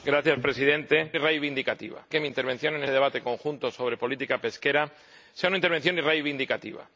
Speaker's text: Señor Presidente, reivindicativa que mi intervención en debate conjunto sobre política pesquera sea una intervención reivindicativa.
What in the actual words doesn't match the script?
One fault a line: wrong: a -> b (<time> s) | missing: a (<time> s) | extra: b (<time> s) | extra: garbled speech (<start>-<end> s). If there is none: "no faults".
no faults